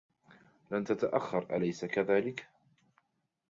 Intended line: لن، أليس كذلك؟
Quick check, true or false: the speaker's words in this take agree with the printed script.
false